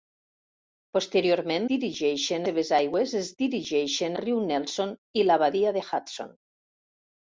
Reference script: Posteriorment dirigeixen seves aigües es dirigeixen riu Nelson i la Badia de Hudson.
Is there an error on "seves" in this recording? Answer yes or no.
no